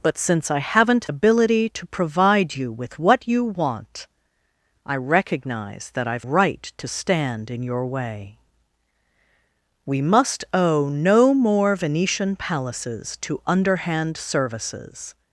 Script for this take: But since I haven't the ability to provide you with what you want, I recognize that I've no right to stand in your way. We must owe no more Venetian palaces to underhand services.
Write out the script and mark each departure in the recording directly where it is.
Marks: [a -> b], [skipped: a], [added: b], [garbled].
But since I haven't [skipped: the] ability to provide you with what you want, I recognize that I've [skipped: no] right to stand in your way. We must owe no more Venetian palaces to underhand services.